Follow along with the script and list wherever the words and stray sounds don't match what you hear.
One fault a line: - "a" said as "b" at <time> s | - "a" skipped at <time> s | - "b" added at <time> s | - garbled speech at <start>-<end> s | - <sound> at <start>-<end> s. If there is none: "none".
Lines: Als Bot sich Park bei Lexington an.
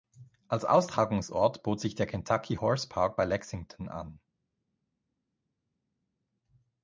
- "Austragungsort" added at 0.7 s
- "der Kentucky Horse" added at 1.9 s